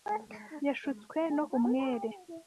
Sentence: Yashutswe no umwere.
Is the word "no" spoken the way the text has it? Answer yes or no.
yes